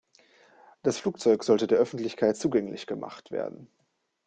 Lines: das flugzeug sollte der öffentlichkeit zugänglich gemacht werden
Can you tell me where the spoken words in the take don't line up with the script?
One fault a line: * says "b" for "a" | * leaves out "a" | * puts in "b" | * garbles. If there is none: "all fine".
all fine